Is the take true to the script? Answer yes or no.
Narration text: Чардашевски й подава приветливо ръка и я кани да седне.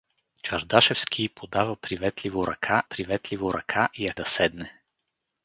no